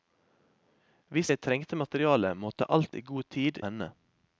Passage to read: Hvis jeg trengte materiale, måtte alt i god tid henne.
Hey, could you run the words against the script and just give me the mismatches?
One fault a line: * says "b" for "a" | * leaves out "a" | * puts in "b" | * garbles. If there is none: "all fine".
all fine